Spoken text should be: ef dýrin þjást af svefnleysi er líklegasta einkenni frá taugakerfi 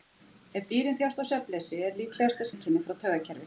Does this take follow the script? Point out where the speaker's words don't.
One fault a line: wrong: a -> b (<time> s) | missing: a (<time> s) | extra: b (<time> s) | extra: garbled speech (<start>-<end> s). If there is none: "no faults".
no faults